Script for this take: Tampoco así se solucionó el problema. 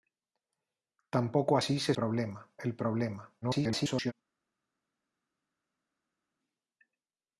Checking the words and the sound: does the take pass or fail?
fail